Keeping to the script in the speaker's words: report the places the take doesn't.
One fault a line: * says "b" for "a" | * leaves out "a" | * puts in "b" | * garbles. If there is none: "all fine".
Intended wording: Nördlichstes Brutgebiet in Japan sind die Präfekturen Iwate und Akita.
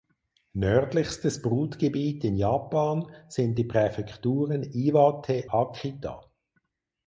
* leaves out "und"